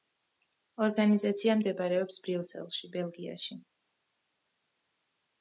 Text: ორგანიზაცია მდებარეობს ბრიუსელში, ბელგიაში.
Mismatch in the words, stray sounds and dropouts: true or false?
false